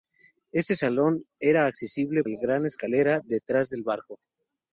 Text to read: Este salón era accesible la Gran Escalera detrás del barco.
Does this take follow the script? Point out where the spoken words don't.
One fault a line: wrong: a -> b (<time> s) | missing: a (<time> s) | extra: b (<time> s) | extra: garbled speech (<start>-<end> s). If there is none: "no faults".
no faults